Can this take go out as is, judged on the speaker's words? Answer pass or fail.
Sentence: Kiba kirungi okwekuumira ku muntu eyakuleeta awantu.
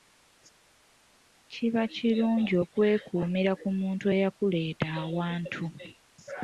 pass